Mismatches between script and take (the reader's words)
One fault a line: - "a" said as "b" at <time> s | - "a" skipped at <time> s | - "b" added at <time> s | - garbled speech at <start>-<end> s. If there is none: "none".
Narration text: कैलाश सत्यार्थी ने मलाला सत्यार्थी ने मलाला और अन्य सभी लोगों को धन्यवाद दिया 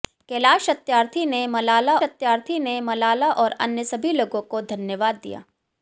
none